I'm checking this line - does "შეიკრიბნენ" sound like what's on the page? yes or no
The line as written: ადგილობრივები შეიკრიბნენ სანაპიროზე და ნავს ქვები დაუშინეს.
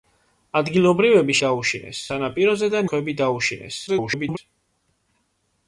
no